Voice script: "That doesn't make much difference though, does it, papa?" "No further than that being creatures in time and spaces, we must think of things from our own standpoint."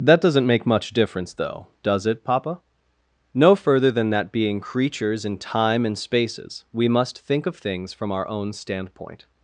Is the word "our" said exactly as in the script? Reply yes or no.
yes